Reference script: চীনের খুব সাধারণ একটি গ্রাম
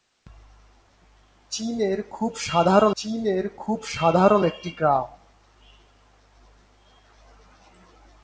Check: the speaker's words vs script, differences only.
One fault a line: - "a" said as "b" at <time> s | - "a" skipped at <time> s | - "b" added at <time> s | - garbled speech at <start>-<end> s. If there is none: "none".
- "চীনের খুব সাধারণ" added at 3.0 s